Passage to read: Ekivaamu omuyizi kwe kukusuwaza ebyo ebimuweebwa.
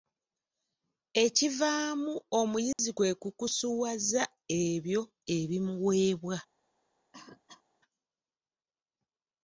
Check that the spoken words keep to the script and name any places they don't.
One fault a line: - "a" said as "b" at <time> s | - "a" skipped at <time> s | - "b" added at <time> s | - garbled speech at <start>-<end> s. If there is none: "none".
none